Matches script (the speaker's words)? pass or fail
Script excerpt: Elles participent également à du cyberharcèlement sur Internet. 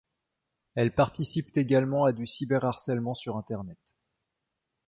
pass